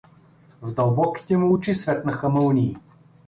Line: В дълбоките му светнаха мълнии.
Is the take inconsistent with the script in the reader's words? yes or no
yes